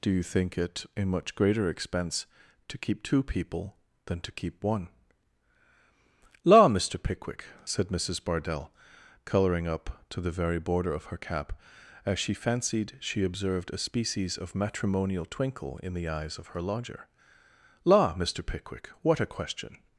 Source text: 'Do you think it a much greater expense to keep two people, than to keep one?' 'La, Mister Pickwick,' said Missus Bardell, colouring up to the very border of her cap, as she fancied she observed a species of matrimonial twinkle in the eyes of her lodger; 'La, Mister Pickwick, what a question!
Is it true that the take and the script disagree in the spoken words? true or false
false